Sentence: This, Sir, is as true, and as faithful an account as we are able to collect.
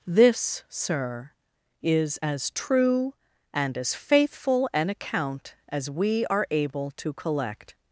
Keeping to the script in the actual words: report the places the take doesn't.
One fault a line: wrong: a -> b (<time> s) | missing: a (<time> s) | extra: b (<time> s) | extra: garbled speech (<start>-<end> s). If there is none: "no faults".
no faults